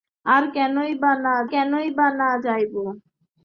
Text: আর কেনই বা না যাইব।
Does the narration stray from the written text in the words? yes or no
yes